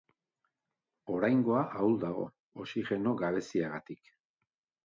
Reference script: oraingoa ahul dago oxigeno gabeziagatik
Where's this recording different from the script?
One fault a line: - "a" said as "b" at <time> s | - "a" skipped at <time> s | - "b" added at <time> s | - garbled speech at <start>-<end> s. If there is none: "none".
none